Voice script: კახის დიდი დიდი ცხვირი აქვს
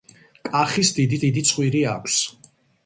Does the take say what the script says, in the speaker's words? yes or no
yes